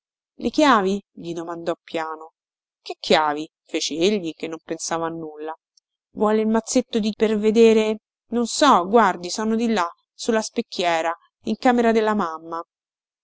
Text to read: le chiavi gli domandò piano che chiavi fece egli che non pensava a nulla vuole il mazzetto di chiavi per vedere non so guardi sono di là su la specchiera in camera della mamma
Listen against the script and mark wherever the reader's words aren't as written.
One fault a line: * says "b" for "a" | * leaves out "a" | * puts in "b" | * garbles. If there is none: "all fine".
* leaves out "chiavi"